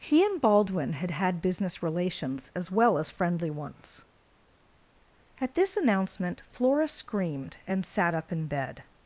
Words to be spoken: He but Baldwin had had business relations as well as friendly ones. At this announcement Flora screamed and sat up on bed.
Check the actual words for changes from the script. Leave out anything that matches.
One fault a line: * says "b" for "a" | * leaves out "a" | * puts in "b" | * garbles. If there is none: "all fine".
* says "and" for "but"
* says "in" for "on"